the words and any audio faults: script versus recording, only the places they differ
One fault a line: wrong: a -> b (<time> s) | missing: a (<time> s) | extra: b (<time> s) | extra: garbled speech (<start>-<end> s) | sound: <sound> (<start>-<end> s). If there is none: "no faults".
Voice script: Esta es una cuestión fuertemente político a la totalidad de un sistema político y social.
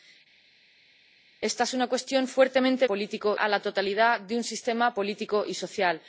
no faults